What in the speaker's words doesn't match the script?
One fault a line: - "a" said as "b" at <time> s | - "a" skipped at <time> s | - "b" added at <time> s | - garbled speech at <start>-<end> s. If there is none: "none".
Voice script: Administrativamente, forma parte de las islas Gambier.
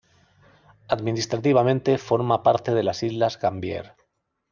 none